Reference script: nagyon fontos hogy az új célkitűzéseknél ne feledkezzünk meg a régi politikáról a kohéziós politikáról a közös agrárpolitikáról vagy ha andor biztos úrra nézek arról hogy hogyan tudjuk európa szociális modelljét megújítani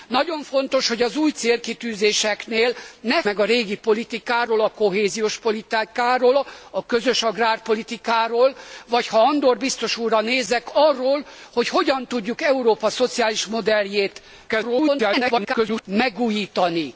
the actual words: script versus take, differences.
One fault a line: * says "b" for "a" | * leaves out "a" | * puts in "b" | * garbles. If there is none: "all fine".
* leaves out "feledkezzünk"
* garbles